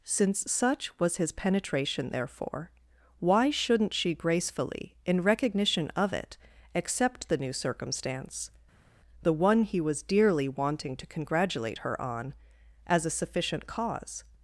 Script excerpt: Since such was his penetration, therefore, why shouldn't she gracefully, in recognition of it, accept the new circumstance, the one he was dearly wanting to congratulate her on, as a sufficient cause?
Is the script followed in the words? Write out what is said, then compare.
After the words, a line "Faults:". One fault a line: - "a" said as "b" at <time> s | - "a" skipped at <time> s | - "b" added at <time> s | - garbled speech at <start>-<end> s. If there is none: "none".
Since such was his penetration, therefore, why shouldn't she gracefully, in recognition of it, accept the new circumstance, the one he was dearly wanting to congratulate her on, as a sufficient cause?
Faults:
none